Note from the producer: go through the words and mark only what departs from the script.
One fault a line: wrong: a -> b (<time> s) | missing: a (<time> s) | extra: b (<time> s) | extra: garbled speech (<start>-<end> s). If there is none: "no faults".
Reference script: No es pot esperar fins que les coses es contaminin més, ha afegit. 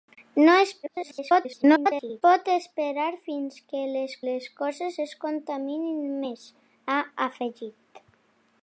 extra: garbled speech (0.8-2.2 s)
extra: les (4.2 s)